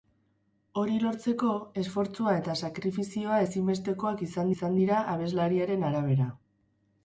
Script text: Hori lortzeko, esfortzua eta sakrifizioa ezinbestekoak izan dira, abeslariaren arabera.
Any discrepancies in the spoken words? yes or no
yes